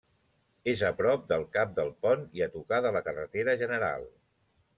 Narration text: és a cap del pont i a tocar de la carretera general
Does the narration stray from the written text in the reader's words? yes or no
yes